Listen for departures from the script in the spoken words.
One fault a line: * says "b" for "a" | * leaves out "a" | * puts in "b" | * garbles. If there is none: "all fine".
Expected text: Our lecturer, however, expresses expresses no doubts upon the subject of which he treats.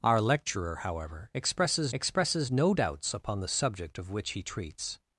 all fine